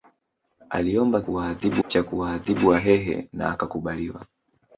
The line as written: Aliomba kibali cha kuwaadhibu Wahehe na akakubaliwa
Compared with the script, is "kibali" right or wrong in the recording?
wrong